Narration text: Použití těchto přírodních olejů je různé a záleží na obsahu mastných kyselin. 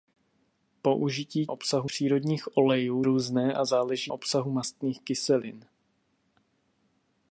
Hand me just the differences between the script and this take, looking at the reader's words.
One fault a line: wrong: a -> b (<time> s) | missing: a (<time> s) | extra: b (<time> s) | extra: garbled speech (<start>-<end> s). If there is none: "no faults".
wrong: těchto -> obsahu (1.5 s)
missing: je (3.0 s)
missing: na (4.1 s)